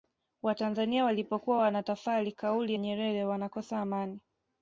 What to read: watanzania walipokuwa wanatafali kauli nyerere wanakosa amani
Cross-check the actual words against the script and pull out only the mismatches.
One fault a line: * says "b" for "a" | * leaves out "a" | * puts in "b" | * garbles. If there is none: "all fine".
all fine